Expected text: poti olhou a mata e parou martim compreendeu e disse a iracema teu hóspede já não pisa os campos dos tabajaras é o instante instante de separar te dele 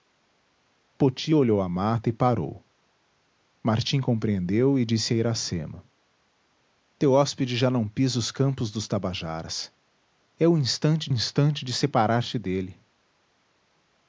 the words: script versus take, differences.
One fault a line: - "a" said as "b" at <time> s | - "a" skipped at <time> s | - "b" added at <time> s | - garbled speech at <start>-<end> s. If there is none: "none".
none